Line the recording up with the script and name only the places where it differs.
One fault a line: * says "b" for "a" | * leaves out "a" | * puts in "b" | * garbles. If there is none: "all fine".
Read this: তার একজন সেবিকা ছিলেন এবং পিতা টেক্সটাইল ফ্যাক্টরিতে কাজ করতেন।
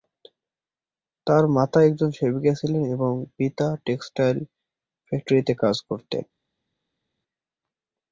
* puts in "মাতা"